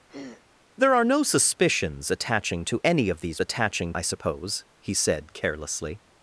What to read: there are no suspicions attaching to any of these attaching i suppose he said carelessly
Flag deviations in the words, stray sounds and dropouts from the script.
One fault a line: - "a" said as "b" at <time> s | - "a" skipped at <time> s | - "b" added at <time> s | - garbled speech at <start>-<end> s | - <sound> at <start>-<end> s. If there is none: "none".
- throat clearing at 0.1-0.5 s